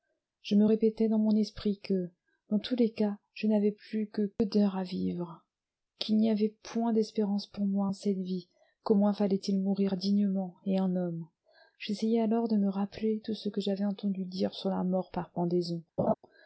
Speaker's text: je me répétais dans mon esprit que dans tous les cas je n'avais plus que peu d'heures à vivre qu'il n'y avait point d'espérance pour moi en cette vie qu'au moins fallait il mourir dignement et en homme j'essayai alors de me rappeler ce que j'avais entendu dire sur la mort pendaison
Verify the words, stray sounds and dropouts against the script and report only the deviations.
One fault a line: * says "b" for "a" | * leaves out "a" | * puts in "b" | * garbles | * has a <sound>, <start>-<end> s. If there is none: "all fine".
* puts in "tout"
* puts in "par"
* has a laugh, 16.0-16.1 s